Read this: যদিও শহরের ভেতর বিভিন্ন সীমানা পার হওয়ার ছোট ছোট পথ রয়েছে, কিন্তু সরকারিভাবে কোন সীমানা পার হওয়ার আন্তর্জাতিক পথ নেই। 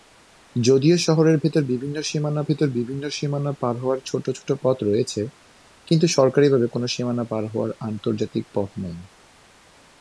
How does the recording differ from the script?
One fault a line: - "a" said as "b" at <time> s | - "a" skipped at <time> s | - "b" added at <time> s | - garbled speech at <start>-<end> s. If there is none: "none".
- "ভেতর বিভিন্ন সীমানা" added at 2.4 s